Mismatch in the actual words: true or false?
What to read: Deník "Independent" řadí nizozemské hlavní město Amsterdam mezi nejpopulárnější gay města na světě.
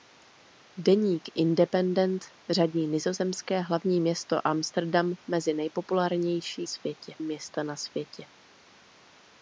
true